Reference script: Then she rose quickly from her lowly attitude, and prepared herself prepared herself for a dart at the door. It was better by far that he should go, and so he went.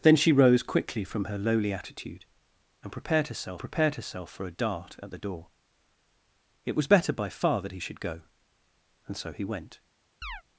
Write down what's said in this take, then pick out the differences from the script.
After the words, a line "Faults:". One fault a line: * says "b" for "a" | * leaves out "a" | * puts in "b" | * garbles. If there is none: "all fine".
Then she rose quickly from her lowly attitude, and prepared herself prepared herself for a dart at the door. It was better by far that he should go, and so he went.
Faults:
all fine